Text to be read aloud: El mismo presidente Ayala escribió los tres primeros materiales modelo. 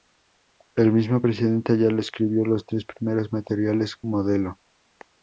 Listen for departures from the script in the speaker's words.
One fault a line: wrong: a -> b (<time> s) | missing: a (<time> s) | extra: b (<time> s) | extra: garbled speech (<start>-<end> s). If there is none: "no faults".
no faults